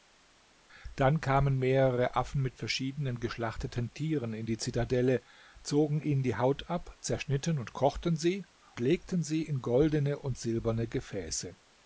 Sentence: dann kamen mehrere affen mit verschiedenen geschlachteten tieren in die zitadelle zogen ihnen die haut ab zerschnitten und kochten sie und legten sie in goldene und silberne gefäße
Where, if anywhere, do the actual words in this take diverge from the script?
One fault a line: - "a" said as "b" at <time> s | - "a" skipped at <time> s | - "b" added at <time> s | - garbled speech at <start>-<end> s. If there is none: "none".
- "und" skipped at 8.4 s